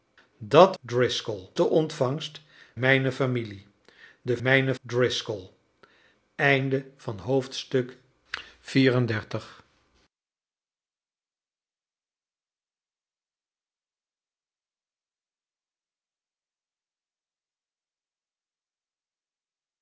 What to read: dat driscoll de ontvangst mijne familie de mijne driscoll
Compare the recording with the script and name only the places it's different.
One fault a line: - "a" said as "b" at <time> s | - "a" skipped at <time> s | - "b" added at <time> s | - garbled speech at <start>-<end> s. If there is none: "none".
none